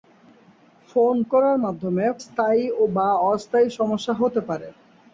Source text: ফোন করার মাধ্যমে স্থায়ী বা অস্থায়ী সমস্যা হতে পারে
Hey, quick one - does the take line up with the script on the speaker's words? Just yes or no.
yes